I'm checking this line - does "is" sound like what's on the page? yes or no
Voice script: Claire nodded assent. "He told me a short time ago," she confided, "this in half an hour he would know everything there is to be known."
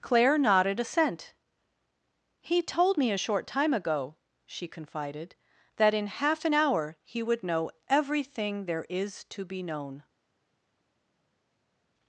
yes